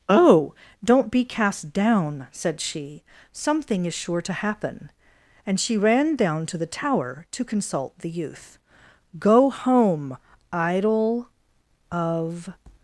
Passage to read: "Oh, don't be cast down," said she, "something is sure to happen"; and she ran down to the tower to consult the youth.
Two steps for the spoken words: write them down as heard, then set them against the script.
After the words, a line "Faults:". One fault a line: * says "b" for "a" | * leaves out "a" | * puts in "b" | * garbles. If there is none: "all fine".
"Oh, don't be cast down," said she, "something is sure to happen"; and she ran down to the tower to consult the youth. "Go home, idol of
Faults:
* puts in "Go home idol of"